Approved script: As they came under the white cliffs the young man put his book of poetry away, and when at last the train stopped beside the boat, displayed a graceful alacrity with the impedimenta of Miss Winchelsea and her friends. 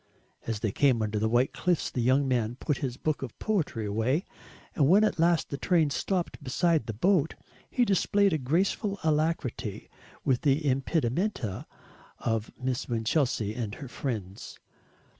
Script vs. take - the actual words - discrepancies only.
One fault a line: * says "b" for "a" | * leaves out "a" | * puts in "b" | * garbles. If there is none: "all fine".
* puts in "he"